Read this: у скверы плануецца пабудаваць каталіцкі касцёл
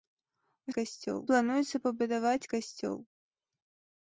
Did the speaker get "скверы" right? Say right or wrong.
wrong